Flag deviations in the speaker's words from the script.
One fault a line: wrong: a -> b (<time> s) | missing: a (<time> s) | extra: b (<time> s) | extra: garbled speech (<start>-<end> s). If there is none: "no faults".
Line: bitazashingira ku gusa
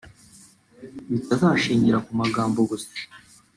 extra: magambo (2.2 s)